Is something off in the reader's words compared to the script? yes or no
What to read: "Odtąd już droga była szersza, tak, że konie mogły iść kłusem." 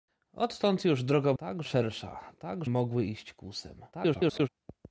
yes